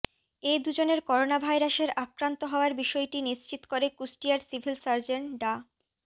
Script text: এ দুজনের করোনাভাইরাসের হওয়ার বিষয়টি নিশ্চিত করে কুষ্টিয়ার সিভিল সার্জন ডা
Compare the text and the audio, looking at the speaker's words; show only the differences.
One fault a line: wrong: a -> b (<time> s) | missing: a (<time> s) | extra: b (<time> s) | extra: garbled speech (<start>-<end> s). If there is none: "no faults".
extra: আক্রান্ত (2.0 s)